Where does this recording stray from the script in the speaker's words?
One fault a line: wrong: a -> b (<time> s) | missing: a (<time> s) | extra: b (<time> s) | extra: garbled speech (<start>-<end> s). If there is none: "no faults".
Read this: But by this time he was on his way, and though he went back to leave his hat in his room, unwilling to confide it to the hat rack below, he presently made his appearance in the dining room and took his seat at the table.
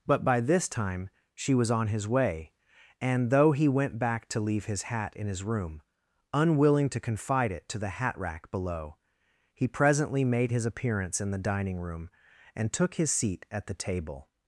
wrong: he -> she (1.3 s)